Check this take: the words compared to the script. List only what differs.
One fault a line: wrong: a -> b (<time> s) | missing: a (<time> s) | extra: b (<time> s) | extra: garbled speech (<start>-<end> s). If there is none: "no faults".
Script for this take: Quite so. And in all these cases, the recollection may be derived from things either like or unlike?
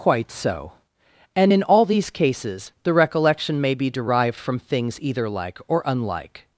no faults